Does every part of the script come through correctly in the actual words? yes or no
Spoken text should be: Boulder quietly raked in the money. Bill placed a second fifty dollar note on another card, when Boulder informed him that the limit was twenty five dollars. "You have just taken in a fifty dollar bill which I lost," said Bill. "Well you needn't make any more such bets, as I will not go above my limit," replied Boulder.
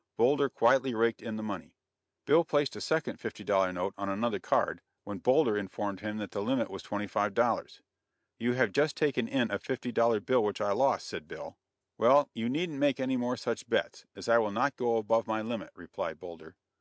yes